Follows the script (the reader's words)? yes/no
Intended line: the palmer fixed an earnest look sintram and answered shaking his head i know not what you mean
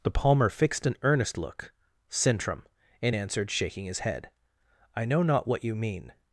yes